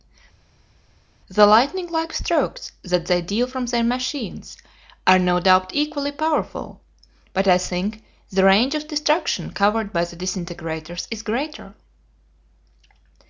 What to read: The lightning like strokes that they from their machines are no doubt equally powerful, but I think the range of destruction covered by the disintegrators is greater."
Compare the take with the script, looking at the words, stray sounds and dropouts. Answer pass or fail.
fail